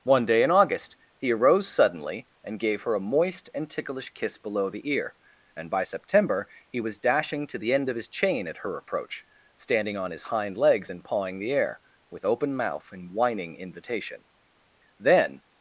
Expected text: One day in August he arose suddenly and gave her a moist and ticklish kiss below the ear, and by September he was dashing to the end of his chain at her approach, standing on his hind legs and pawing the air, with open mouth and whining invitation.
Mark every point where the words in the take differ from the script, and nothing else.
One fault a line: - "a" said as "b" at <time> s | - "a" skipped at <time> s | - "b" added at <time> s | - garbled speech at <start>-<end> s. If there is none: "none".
- "Then" added at 15.0 s